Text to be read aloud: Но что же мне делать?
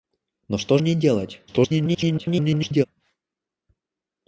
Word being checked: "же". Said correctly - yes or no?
no